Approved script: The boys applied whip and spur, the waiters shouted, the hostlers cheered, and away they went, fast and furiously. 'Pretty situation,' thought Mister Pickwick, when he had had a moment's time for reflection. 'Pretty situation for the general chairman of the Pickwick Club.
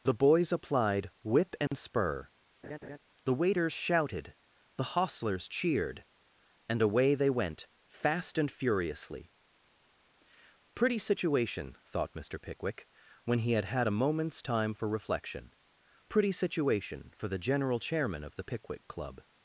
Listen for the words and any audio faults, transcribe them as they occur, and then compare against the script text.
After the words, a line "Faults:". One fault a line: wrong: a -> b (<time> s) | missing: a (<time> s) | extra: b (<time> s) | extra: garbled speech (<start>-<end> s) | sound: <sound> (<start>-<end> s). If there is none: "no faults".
The boys applied whip and spur, the waiters shouted, the hostlers cheered, and away they went, fast and furiously. 'Pretty situation,' thought Mister Pickwick, when he had had a moment's time for reflection. 'Pretty situation for the general chairman of the Pickwick Club.
Faults:
sound: dropout (1.7-1.7 s)
sound: laugh (2.6-3.0 s)